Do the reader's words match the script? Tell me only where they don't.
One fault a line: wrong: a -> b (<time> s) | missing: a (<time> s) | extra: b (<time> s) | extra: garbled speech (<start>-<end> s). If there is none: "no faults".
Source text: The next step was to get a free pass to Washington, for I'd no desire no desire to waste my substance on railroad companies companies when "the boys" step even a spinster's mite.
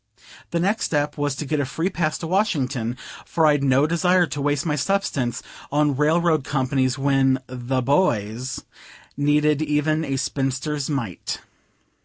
missing: no desire (4.2 s)
missing: companies (7.0 s)
wrong: step -> needed (9.2 s)